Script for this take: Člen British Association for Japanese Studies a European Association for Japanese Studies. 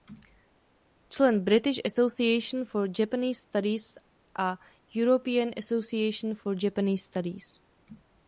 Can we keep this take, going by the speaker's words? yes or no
yes